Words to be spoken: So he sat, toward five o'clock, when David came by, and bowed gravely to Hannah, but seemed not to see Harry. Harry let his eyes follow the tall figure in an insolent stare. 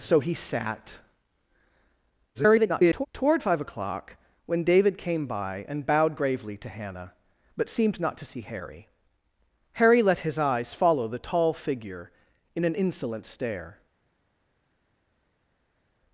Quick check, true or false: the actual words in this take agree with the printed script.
false